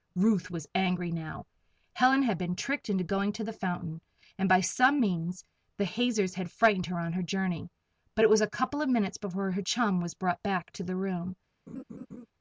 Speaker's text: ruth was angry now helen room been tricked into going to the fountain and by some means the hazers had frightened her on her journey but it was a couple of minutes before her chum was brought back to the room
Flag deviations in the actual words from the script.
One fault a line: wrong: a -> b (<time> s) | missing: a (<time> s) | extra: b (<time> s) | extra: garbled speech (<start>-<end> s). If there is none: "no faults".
wrong: room -> had (2.2 s)